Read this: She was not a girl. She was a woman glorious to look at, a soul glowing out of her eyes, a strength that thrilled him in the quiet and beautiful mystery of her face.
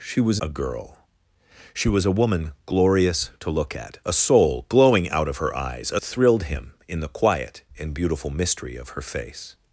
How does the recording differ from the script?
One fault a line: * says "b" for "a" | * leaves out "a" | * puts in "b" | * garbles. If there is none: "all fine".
* leaves out "not"
* leaves out "strength that"